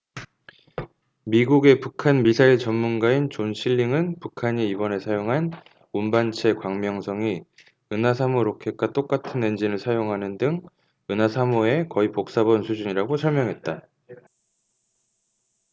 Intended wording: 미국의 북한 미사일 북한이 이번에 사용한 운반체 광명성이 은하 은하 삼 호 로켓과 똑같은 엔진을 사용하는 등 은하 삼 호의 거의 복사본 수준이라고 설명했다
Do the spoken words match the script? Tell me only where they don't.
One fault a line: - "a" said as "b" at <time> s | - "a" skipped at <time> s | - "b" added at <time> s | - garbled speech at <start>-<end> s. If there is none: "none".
- "전문가인 존 실링은" added at 2.6 s
- "은하" skipped at 8.1 s